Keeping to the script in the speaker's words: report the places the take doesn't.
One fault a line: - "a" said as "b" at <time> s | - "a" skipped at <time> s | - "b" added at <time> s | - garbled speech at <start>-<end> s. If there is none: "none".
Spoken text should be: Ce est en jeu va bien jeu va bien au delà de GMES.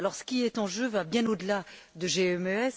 - "qui" added at 0.2 s
- "jeu va bien" skipped at 1.2 s